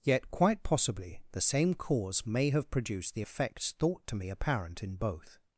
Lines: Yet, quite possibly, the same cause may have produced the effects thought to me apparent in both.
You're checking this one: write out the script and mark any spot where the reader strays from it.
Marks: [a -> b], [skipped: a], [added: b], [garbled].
Yet, quite possibly, the same cause may have produced the effects thought to me apparent in both.